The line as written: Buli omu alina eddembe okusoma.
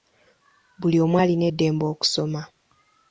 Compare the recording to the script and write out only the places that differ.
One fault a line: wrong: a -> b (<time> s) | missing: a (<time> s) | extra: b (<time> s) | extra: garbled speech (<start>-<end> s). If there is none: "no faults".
no faults